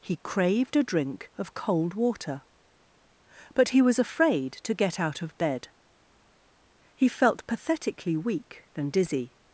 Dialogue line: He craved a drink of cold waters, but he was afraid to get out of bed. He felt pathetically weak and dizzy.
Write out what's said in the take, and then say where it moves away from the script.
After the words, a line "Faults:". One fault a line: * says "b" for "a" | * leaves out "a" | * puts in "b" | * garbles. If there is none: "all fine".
He craved a drink of cold water, but he was afraid to get out of bed. He felt pathetically weak and dizzy.
Faults:
* says "water" for "waters"